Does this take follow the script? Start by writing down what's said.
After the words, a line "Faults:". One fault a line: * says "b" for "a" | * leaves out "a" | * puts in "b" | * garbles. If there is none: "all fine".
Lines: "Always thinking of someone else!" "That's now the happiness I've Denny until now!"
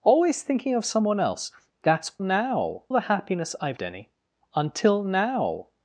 "Always thinking of someone else!" "That's now the happiness I've Denny until now!"
Faults:
all fine